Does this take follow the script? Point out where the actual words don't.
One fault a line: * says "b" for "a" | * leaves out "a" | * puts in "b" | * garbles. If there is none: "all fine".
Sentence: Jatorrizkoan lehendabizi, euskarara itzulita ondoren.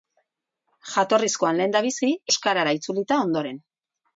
all fine